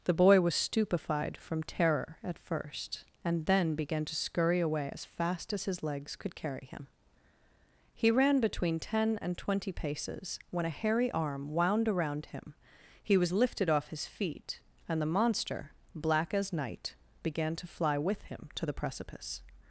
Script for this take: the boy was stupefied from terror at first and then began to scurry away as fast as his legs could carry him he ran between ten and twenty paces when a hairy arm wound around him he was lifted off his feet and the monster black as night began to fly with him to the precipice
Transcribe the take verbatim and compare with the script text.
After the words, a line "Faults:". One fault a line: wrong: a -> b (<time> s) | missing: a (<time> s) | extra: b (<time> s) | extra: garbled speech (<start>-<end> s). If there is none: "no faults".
the boy was stupefied from terror at first and then began to scurry away as fast as his legs could carry him he ran between ten and twenty paces when a hairy arm wound around him he was lifted off his feet and the monster black as night began to fly with him to the precipice
Faults:
no faults